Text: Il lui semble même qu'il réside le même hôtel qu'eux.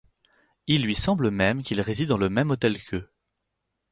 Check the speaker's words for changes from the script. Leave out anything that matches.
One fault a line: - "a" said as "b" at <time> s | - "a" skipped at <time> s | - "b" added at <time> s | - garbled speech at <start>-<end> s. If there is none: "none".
- "dans" added at 2.1 s